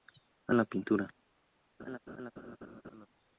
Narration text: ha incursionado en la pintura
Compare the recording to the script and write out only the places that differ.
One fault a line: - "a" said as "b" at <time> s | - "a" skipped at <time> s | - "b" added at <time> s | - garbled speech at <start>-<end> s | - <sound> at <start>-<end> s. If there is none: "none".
- "incursionado" skipped at 0.6 s
- laugh at 1.8-3.1 s